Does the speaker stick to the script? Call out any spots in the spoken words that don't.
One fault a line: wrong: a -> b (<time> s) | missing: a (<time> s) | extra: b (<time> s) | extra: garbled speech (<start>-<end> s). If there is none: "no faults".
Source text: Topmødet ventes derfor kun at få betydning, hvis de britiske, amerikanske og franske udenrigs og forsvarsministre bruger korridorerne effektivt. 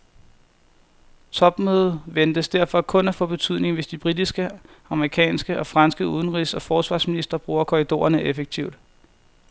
no faults